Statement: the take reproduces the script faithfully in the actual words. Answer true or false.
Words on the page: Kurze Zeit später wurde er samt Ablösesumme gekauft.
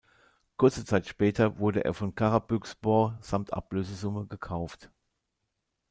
false